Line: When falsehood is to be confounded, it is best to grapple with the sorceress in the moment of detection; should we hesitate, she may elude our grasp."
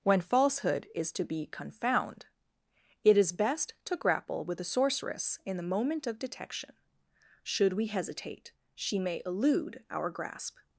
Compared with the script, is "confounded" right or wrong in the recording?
wrong